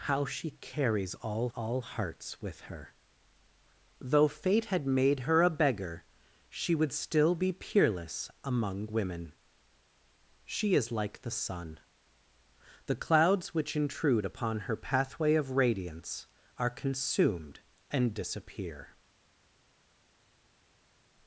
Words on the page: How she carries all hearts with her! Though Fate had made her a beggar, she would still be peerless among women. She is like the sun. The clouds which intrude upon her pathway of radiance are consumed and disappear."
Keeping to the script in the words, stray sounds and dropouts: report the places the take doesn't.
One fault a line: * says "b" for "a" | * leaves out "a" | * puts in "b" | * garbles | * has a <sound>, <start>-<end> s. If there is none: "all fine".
* puts in "all"